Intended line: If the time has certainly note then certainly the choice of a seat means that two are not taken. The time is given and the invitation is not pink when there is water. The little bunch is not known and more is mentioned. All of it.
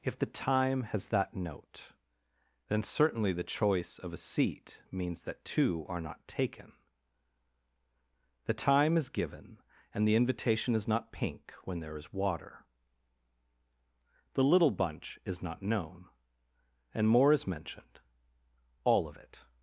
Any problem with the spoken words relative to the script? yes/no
yes